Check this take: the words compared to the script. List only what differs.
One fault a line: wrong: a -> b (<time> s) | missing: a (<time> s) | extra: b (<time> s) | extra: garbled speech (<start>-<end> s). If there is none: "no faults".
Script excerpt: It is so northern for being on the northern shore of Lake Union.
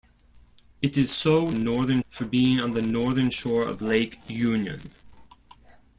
no faults